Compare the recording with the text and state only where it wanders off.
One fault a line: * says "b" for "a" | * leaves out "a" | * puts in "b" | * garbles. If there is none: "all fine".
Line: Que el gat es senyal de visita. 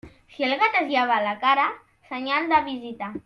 * says "Si" for "Que"
* puts in "llava la cara"